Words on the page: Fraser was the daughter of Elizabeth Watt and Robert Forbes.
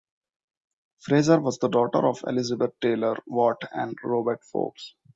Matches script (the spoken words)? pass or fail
fail